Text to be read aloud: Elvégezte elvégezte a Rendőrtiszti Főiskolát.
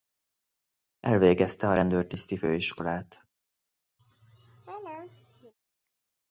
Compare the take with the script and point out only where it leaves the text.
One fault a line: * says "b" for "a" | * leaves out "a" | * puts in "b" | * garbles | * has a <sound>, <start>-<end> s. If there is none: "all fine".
* leaves out "elvégezte"
* has a laugh, 4.0-5.5 s